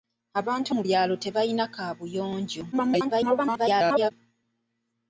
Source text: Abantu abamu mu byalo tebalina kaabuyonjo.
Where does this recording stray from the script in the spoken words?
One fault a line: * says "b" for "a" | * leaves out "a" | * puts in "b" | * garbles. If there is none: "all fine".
* leaves out "abamu"
* garbles